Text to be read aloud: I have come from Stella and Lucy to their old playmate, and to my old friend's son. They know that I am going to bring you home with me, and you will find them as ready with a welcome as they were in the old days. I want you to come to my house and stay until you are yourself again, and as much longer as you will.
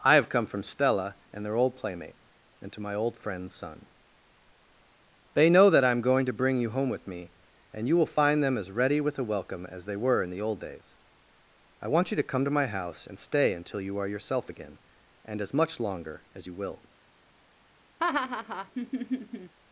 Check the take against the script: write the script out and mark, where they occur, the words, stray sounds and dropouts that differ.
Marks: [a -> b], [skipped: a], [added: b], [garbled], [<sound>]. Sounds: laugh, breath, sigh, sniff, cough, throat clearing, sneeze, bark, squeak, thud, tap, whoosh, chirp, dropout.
I have come from Stella and [skipped: Lucy to] their old playmate, and to my old friend's son. They know that I am going to bring you home with me, and you will find them as ready with a welcome as they were in the old days. I want you to come to my house and stay until you are yourself again, and as much longer as you will. [laugh]